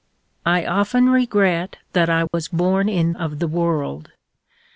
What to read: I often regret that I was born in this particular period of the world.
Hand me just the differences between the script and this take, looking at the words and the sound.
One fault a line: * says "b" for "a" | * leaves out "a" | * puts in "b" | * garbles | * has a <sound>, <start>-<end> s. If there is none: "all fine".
* has a dropout, 2.3-2.3 s
* leaves out "this particular period"